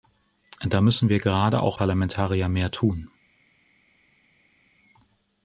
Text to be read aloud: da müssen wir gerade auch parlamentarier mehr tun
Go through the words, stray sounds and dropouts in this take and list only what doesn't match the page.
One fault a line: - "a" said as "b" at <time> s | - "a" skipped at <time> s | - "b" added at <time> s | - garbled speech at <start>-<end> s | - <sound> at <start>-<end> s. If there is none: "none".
none